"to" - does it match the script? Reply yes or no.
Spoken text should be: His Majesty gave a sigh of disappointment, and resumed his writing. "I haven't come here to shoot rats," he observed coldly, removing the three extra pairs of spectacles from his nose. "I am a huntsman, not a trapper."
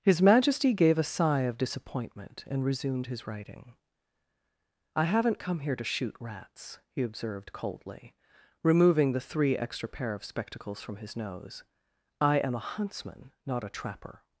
yes